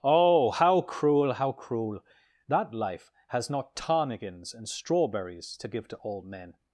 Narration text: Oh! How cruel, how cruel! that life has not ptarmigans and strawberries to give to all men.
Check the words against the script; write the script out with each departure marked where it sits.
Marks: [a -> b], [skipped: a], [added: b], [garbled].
Oh! How cruel, how cruel! that life has not ptarmigans and strawberries to give to all men.